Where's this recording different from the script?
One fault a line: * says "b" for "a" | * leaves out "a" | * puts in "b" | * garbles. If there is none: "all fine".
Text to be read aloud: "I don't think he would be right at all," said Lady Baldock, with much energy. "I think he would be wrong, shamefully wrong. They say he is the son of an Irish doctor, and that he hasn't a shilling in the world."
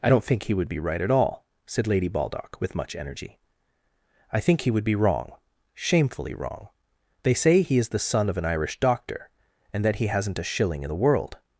all fine